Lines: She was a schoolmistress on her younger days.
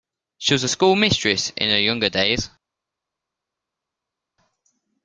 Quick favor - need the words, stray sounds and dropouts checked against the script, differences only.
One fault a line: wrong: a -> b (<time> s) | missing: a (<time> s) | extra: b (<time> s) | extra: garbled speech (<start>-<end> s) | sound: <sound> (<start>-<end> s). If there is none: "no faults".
wrong: on -> in (1.6 s)